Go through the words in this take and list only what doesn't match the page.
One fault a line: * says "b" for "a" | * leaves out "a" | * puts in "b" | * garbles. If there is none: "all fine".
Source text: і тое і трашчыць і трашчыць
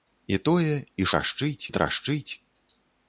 all fine